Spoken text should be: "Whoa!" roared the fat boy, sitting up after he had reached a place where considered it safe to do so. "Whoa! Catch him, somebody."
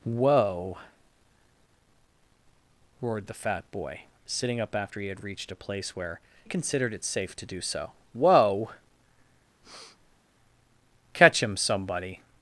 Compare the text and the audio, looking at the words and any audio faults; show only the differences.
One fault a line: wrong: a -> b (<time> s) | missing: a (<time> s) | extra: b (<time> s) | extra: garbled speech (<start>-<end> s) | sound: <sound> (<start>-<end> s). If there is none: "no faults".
sound: breath (9.6-10.2 s)